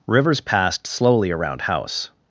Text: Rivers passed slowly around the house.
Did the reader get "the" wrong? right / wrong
wrong